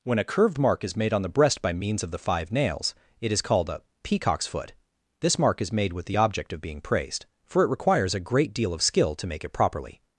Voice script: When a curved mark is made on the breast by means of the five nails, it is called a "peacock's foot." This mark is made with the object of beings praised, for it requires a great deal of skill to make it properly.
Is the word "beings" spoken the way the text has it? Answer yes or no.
no